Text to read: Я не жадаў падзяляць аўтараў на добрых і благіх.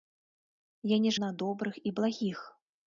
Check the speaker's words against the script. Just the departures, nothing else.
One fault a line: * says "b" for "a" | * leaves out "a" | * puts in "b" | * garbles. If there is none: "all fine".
* leaves out "жадаў падзяляць аўтараў"